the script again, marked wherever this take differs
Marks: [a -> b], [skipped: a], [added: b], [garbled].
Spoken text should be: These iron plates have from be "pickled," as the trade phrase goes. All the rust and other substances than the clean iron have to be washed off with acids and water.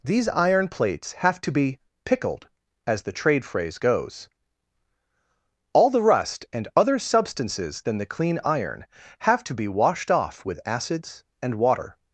These iron plates have [from -> to] be "pickled," as the trade phrase goes. All the rust and other substances than the clean iron have to be washed off with acids and water.